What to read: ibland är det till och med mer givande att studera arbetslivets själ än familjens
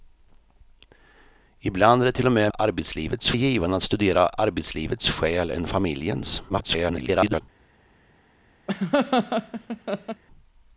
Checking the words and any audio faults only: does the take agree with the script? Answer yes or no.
no